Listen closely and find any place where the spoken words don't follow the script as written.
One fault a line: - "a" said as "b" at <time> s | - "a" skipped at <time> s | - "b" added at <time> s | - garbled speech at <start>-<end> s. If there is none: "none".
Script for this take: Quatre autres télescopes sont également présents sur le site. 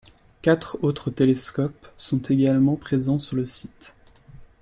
none